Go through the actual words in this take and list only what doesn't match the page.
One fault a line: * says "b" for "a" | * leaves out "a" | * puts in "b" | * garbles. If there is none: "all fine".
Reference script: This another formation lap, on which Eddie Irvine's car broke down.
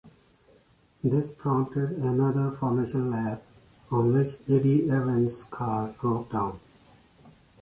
* puts in "prompted"